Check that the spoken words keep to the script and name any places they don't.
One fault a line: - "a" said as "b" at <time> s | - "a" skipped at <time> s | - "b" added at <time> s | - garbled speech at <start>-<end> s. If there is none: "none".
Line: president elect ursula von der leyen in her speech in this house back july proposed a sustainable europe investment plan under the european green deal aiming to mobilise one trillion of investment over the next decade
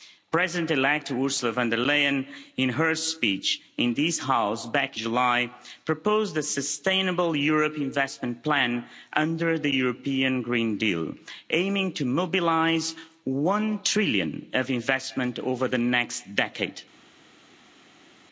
none